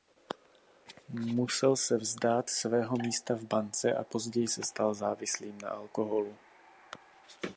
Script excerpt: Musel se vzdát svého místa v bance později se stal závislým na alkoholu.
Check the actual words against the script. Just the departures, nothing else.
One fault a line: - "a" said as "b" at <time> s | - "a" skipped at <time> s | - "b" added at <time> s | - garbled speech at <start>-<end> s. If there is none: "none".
- "a" added at 3.9 s